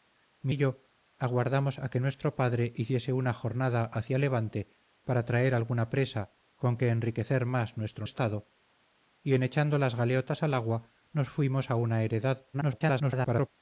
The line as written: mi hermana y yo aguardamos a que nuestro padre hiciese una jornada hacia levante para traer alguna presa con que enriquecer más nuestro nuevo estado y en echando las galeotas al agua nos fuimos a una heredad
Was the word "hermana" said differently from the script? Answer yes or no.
yes